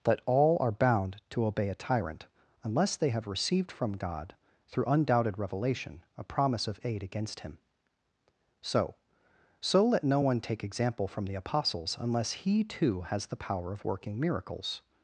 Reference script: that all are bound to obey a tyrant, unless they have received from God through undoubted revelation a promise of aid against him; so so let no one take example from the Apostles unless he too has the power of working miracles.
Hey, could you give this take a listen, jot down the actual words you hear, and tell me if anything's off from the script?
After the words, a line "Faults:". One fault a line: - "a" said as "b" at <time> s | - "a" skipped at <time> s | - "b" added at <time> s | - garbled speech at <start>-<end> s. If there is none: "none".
that all are bound to obey a tyrant, unless they have received from God through undoubted revelation a promise of aid against him; so so let no one take example from the Apostles unless he too has the power of working miracles.
Faults:
none